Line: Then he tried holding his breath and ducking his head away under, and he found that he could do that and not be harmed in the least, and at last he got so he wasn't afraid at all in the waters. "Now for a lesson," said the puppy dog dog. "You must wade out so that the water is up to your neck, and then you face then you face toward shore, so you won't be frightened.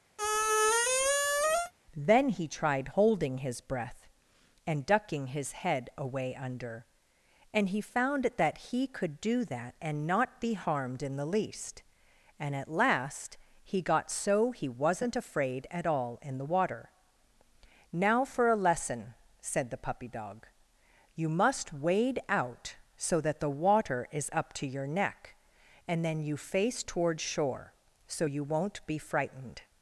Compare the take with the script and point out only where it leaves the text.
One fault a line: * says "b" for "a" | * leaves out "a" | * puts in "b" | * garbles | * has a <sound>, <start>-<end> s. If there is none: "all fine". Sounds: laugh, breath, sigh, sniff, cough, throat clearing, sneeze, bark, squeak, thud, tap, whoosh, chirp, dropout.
* has a squeak, 0.2-1.7 s
* says "water" for "waters"
* leaves out "dog"
* leaves out "then you face"